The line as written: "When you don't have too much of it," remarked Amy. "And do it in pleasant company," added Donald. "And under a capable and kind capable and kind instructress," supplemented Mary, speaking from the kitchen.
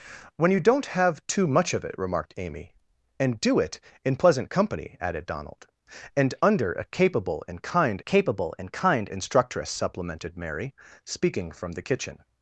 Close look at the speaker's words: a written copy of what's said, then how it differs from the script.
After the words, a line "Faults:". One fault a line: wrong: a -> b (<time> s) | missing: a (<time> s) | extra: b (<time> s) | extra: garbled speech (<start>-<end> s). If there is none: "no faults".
"When you don't have too much of it," remarked Amy. "And do it in pleasant company," added Donald. "And under a capable and kind capable and kind instructress," supplemented Mary, speaking from the kitchen.
Faults:
no faults